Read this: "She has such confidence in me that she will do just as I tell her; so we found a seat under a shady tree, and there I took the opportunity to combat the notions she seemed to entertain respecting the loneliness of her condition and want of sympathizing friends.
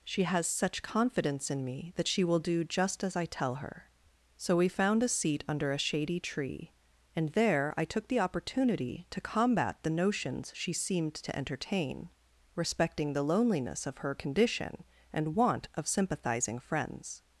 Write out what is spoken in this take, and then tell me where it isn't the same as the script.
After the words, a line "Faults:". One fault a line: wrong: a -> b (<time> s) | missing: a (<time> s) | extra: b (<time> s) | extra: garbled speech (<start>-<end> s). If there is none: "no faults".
"She has such confidence in me that she will do just as I tell her; so we found a seat under a shady tree, and there I took the opportunity to combat the notions she seemed to entertain respecting the loneliness of her condition and want of sympathizing friends.
Faults:
no faults